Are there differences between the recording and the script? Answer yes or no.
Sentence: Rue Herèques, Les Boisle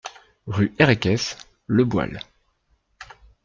yes